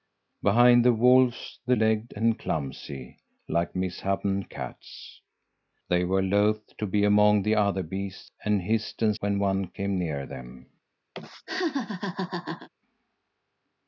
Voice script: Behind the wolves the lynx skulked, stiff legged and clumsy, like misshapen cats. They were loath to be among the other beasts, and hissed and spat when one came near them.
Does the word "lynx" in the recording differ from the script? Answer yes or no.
yes